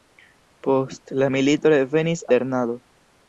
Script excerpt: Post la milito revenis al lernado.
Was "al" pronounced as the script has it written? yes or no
no